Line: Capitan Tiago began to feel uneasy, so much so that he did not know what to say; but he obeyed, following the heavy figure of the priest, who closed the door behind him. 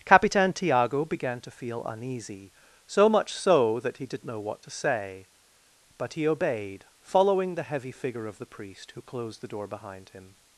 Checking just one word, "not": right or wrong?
wrong